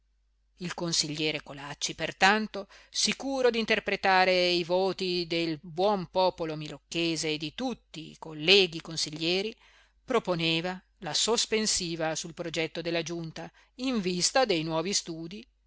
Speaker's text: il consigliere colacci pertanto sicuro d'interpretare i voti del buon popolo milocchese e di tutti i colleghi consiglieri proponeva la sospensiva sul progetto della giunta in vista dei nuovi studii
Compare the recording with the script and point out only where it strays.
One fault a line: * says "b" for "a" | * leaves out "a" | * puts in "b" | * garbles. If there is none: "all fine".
all fine